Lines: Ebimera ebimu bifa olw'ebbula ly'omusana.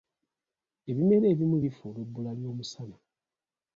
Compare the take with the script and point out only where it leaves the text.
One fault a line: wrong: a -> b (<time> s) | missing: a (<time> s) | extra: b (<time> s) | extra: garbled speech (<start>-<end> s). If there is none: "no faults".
no faults